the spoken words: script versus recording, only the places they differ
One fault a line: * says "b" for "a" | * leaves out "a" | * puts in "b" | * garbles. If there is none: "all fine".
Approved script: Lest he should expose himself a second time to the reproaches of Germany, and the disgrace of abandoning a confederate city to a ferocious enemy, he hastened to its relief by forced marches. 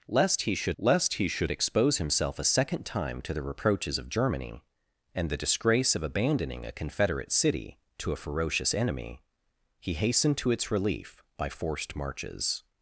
* puts in "lest he should"